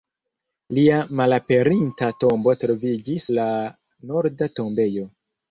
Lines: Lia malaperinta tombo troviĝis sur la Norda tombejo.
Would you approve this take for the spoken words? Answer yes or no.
no